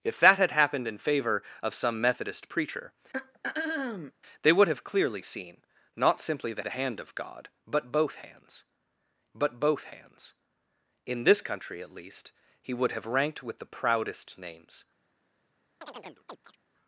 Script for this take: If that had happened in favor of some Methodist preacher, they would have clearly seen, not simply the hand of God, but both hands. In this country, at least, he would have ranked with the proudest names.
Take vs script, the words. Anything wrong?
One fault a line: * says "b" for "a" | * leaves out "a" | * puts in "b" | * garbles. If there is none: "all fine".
* puts in "the"
* puts in "but both hands"